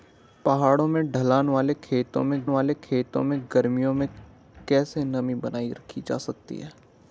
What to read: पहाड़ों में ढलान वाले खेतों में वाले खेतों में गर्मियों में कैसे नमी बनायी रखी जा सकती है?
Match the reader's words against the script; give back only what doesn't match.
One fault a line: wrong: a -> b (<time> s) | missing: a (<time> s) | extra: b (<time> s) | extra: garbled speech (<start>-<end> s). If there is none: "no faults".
no faults